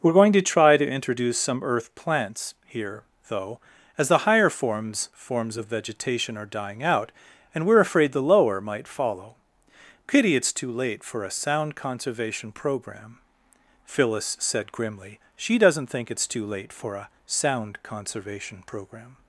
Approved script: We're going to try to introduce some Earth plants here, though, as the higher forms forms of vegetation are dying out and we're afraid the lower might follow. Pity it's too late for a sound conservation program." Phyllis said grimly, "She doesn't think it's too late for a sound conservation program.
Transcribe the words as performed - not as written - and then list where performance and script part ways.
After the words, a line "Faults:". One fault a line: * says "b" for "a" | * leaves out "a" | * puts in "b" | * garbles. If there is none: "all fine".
We're going to try to introduce some Earth plants here, though, as the higher forms forms of vegetation are dying out and we're afraid the lower might follow. Pity it's too late for a sound conservation program." Phyllis said grimly, "She doesn't think it's too late for a sound conservation program.
Faults:
all fine